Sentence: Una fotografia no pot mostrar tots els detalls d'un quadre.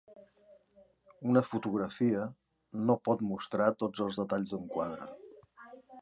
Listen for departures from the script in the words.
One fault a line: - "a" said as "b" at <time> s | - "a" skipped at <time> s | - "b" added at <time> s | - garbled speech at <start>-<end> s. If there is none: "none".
none